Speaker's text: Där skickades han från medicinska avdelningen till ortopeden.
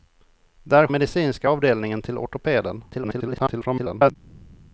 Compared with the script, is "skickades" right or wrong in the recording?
wrong